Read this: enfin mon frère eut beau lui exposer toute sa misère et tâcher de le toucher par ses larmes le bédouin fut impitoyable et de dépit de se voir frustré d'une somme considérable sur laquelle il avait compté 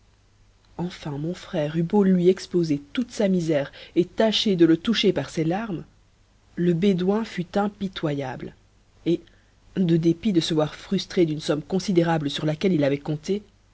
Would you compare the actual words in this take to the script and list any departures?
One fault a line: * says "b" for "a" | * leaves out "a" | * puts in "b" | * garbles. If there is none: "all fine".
all fine